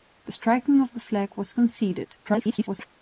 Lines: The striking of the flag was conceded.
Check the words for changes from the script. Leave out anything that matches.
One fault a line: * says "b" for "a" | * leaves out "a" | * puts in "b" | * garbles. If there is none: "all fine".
* garbles